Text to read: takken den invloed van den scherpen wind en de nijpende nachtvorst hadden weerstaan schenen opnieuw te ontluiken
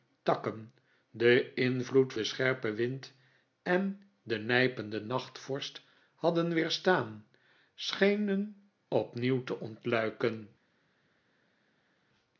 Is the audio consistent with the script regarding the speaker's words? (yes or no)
no